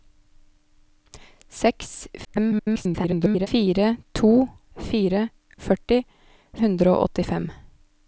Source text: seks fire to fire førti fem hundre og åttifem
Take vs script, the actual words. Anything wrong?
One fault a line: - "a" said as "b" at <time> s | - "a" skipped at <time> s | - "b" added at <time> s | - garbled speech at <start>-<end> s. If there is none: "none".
- garbled speech at 2.2-3.5 s
- "fem" skipped at 6.0 s